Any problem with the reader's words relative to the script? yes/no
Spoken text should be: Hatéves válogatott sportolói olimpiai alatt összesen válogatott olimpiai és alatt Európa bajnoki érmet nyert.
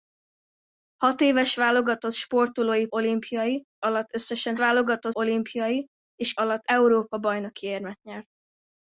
no